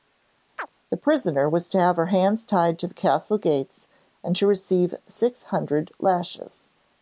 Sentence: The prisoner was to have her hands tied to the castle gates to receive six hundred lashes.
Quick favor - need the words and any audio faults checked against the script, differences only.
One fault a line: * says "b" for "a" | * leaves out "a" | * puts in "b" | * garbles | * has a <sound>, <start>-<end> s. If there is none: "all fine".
* has a chirp, 0.6-0.7 s
* puts in "and"